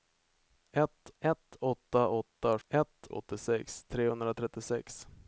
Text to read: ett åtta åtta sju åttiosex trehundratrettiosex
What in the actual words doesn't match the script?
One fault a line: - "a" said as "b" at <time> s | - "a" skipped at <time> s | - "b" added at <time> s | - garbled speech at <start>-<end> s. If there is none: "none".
- "ett" added at 1.2 s
- "sju" said as "ett" at 2.7 s